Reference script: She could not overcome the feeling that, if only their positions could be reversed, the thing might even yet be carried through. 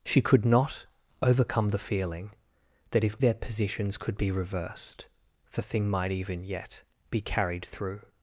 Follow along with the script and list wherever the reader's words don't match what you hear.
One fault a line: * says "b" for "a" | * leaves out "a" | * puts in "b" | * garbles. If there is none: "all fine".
* leaves out "only"